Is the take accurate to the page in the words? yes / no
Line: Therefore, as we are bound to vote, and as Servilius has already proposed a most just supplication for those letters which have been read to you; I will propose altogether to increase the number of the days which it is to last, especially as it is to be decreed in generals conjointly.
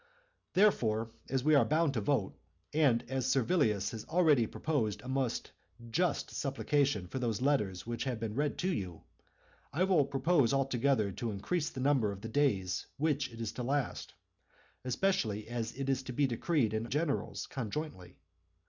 yes